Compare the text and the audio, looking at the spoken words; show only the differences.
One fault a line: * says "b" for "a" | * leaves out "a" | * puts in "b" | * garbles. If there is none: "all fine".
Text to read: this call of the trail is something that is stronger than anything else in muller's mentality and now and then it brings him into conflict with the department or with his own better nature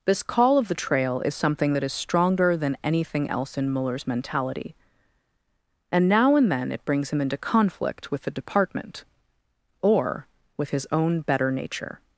all fine